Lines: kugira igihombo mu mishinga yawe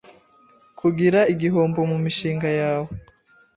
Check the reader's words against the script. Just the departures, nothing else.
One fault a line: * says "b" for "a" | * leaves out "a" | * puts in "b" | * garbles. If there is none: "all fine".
all fine